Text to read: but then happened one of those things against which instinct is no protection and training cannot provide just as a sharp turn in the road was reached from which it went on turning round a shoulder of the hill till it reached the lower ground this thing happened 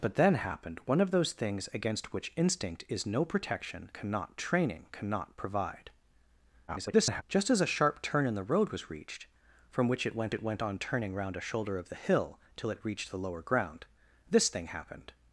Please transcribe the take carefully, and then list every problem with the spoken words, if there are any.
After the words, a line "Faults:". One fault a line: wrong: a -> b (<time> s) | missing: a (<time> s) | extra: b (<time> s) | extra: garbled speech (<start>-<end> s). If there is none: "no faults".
but then happened one of those things against which instinct is no protection cannot training cannot provide [garbled] just as a sharp turn in the road was reached from which it went it went on turning round a shoulder of the hill till it reached the lower ground this thing happened
Faults:
wrong: and -> cannot (3.9 s)
extra: garbled speech (6.7-7.2 s)
extra: it went (10.3 s)